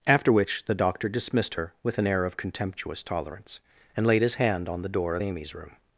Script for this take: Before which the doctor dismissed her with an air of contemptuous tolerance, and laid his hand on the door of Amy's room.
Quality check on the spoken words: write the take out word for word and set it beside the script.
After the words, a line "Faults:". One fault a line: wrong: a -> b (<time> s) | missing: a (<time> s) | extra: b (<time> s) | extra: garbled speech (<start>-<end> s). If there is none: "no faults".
After which the doctor dismissed her with an air of contemptuous tolerance, and laid his hand on the door of Amy's room.
Faults:
wrong: Before -> After (0.1 s)